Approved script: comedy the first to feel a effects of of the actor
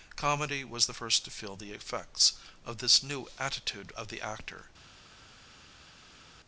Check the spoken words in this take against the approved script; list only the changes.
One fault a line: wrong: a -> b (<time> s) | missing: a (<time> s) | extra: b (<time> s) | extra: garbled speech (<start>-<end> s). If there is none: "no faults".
extra: was (0.6 s)
wrong: a -> the (1.6 s)
extra: this new attitude (2.8 s)